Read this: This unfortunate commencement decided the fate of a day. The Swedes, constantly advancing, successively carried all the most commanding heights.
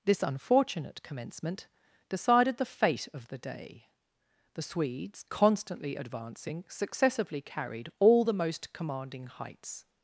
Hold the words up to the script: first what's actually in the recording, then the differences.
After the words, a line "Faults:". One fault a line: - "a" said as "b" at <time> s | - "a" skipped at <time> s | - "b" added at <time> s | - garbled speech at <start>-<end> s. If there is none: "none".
This unfortunate commencement decided the fate of the day. The Swedes, constantly advancing, successively carried all the most commanding heights.
Faults:
- "a" said as "the" at 3.3 s